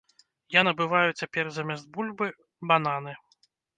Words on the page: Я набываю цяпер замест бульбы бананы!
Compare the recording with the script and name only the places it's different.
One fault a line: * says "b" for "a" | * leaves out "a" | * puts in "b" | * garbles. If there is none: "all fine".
all fine